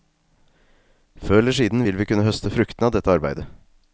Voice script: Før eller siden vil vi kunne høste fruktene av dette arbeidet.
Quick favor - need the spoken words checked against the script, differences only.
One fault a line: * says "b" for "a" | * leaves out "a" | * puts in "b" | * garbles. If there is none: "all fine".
all fine